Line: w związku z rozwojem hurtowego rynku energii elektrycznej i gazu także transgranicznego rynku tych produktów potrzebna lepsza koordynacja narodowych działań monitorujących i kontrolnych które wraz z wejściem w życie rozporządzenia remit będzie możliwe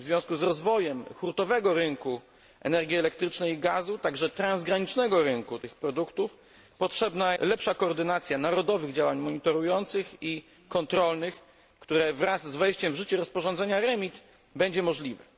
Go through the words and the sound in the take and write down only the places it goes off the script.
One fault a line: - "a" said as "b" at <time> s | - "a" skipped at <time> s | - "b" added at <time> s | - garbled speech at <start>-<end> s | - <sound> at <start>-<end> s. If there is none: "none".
none